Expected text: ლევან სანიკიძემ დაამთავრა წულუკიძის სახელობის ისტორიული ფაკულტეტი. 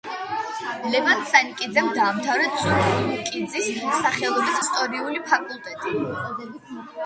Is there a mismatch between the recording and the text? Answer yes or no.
no